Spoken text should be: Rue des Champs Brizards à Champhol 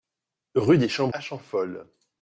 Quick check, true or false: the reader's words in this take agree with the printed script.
false